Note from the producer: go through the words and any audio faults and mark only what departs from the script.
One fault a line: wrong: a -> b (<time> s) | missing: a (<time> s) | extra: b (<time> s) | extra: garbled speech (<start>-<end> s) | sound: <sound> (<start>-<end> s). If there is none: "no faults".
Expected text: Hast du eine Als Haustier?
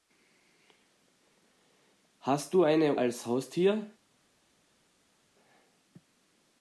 no faults